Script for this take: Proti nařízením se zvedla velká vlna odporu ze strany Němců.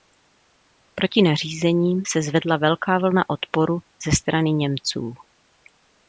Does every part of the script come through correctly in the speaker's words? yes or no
yes